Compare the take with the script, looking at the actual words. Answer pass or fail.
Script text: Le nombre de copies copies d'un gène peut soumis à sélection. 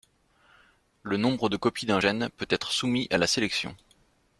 fail